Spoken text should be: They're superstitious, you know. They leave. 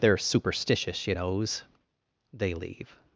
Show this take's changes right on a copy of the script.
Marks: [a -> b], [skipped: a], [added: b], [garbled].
They're superstitious, you [know. -> knows] They leave.